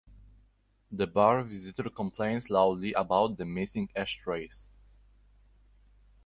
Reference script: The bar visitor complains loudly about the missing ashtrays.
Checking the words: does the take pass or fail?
pass